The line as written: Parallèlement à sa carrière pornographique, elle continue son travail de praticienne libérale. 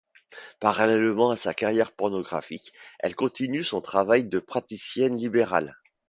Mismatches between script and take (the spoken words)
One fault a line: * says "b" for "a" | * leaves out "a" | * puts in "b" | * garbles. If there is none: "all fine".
all fine